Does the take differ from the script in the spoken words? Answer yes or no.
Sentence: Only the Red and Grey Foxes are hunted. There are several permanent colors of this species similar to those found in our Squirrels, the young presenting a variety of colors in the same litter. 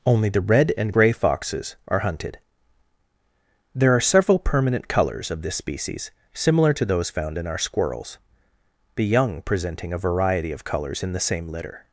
no